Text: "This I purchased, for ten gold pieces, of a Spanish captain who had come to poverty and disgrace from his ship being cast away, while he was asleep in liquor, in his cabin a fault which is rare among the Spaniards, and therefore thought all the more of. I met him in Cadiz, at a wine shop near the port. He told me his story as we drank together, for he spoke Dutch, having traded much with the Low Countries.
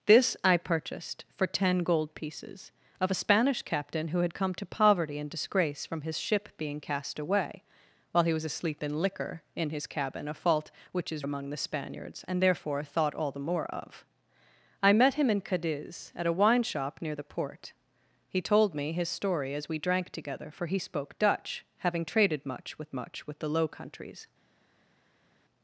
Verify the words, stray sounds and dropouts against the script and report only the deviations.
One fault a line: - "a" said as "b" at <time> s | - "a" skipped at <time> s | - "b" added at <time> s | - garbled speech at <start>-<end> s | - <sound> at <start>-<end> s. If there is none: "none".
- "rare" skipped at 11.3 s
- "much with" added at 22.9 s